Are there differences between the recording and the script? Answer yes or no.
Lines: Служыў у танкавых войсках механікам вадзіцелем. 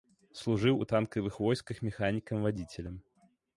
no